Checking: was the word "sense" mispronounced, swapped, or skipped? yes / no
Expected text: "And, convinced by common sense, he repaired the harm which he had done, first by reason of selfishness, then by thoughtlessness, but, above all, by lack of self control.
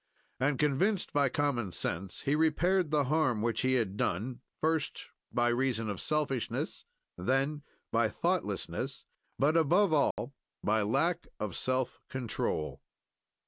no